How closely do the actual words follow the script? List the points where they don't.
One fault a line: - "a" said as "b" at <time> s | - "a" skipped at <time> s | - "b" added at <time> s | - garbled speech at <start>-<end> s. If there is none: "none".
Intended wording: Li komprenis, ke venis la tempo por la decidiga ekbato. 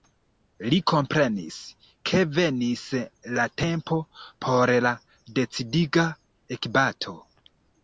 none